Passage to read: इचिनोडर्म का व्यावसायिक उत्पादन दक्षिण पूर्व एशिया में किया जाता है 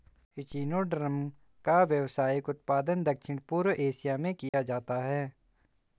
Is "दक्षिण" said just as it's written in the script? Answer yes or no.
yes